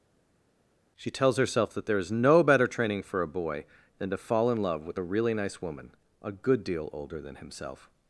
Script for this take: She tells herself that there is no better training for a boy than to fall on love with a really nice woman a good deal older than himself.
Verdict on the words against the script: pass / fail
fail